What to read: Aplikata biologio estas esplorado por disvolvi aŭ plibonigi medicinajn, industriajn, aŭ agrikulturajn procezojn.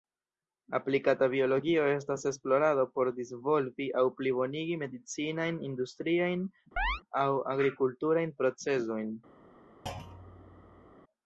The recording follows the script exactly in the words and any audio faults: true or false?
false